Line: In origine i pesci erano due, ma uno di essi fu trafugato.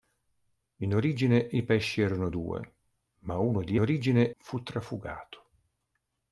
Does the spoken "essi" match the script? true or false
false